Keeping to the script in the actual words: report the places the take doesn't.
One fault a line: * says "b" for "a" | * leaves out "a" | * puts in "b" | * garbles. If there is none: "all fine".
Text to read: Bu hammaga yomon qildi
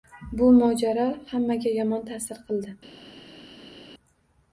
* puts in "mojaro"
* puts in "ta`sir"